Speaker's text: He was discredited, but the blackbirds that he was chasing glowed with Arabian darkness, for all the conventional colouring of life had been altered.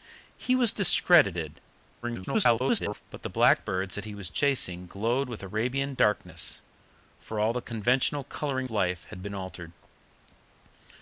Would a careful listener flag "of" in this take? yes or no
yes